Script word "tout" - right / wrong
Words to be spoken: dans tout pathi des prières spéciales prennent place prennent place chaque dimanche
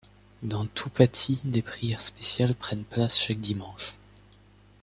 right